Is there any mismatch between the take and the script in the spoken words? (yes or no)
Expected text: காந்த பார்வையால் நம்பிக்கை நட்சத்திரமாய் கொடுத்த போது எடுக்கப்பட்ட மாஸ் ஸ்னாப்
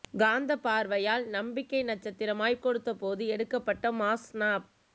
no